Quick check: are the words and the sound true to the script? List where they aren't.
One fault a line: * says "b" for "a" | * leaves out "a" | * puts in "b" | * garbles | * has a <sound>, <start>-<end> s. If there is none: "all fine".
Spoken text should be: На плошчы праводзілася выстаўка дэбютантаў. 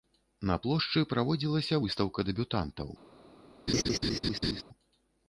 * has a laugh, 3.7-4.6 s